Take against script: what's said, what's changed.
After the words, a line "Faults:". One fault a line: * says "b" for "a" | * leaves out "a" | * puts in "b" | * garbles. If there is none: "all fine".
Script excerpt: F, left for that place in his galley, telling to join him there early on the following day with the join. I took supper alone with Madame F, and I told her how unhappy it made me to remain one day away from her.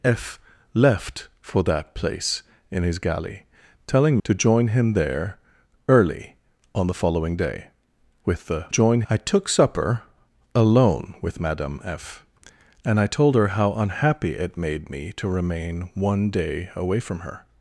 F, left for that place in his galley, telling to join him there early on the following day with the join. I took supper alone with Madame F, and I told her how unhappy it made me to remain one day away from her.
Faults:
all fine